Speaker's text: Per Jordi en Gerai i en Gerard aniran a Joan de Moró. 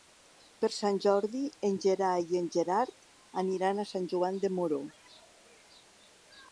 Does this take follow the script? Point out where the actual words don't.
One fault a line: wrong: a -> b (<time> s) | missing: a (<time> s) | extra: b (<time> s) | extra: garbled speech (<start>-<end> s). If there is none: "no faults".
extra: Sant (0.8 s)
extra: Sant (3.9 s)